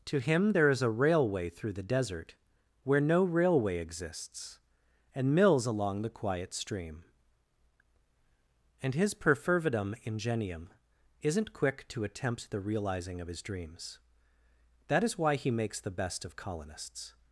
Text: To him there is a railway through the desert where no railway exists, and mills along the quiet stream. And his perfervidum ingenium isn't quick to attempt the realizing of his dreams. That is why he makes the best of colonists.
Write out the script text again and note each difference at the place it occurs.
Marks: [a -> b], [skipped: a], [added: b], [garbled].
To him there is a railway through the desert where no railway exists, and mills along the quiet stream. And his perfervidum ingenium isn't quick to attempt the realizing of his dreams. That is why he makes the best of colonists.